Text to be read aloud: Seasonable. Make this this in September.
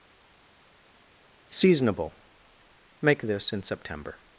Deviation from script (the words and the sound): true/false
true